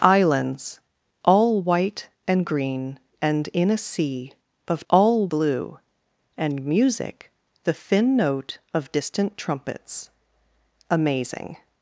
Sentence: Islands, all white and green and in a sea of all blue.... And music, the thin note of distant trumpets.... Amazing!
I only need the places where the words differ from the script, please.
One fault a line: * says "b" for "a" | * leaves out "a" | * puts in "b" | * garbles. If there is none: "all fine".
all fine